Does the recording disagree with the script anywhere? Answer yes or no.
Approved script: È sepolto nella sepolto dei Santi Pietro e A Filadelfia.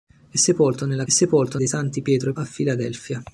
no